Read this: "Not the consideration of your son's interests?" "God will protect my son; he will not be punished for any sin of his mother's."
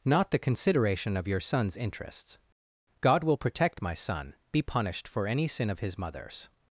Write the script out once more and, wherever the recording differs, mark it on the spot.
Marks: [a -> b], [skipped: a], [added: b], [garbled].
"Not the consideration of your son's interests?" "God will protect my son; [skipped: he will not] be punished for any sin of his mother's."